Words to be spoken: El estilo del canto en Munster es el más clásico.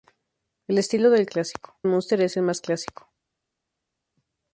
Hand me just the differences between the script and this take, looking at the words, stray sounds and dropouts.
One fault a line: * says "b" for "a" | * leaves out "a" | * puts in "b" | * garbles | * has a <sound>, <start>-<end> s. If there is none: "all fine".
* says "clásico" for "canto"